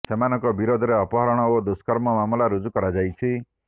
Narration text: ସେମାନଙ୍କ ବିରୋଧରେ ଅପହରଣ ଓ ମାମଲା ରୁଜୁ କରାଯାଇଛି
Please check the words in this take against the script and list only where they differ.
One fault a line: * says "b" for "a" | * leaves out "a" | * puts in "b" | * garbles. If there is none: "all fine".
* puts in "ଦୁଷ୍କର୍ମ"